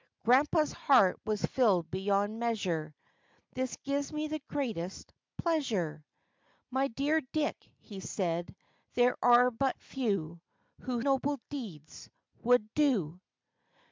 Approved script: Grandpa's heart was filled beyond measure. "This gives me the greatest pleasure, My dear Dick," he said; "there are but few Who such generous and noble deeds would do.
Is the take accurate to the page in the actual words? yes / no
no